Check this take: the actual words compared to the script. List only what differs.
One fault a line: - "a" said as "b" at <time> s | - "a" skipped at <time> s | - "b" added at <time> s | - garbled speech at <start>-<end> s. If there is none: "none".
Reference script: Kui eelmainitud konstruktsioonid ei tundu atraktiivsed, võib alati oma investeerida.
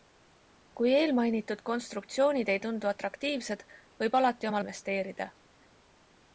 none